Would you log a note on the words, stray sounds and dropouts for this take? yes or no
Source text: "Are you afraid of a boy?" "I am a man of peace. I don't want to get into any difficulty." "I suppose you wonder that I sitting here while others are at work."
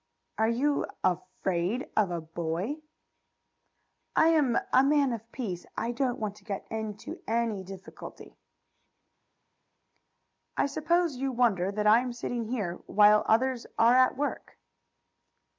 yes